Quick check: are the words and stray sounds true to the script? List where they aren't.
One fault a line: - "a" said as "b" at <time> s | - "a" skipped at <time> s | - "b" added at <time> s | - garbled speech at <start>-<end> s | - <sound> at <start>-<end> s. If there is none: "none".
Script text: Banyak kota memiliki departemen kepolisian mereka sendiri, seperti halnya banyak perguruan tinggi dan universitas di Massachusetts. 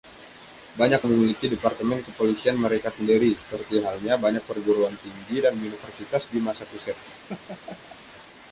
- "kota" skipped at 1.1 s
- laugh at 7.3-8.0 s